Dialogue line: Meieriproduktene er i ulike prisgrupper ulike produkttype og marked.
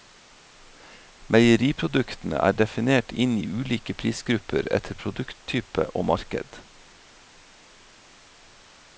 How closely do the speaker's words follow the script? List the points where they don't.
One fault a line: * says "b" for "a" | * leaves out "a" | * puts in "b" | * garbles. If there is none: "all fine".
* puts in "definert inn"
* says "etter" for "ulike"